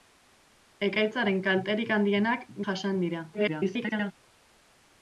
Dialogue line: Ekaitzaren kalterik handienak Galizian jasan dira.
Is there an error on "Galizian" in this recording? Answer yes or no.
yes